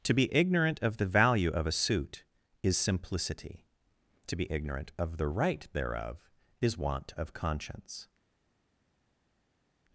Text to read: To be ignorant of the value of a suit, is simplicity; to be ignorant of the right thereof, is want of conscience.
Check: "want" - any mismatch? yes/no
no